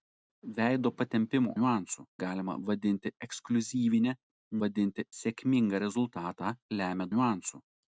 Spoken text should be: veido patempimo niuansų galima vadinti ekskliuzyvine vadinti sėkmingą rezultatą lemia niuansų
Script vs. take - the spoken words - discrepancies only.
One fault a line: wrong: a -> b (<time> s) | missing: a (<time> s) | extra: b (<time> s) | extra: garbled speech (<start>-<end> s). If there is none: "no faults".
no faults